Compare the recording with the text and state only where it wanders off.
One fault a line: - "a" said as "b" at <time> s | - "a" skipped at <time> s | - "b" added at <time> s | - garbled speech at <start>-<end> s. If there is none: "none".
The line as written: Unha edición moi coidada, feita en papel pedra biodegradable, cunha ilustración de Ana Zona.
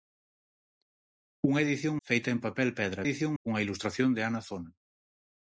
- "moi coidada" skipped at 1.9 s
- "biodegradable" said as "edición" at 3.0 s